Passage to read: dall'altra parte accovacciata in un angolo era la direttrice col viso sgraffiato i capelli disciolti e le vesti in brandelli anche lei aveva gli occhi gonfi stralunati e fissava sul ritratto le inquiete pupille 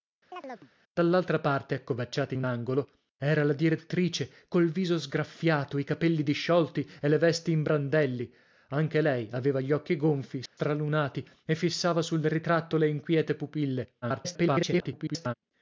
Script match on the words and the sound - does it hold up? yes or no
no